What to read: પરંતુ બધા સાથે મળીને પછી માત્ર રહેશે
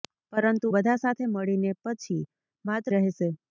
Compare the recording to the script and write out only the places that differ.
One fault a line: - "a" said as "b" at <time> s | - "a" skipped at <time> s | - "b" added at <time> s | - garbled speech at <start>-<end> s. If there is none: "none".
none